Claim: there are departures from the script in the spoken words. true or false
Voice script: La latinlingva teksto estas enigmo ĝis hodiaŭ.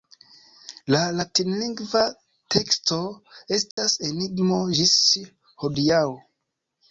false